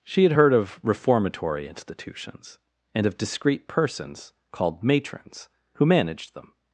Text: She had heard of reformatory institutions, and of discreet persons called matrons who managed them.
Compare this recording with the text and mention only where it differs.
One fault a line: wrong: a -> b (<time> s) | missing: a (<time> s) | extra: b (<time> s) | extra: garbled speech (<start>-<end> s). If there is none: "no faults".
no faults